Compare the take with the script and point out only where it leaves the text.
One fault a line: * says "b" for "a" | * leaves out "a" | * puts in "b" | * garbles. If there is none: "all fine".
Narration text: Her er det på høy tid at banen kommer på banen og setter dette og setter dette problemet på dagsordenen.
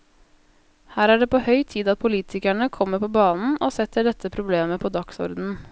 * says "politikerne" for "banen"
* leaves out "og setter dette"